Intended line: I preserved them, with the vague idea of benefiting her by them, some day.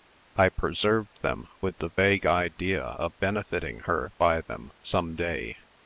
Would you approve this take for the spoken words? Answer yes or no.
yes